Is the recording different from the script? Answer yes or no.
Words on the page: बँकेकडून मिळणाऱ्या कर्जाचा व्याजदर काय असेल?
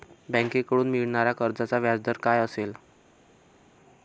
no